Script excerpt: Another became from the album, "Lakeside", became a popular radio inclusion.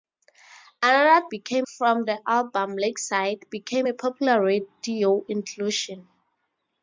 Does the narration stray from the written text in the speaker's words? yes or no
no